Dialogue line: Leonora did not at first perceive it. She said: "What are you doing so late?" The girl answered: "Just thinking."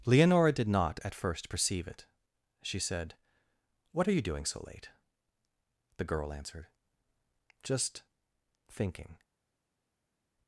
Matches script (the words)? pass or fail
pass